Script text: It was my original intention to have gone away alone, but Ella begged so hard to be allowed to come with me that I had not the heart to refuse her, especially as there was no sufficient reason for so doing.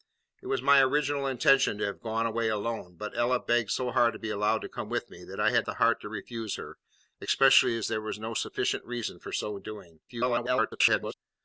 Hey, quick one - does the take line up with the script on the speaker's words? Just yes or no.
no